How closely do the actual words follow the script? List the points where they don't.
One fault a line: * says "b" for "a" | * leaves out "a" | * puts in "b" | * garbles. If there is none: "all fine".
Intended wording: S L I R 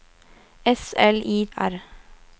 all fine